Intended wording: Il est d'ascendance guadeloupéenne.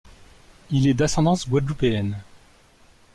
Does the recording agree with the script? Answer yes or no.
yes